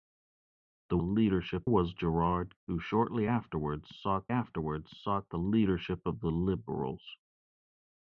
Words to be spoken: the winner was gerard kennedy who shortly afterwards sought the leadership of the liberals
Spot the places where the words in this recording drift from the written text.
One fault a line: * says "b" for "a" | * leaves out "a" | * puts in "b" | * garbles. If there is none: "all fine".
* says "leadership" for "winner"
* leaves out "kennedy"
* puts in "afterwards sought"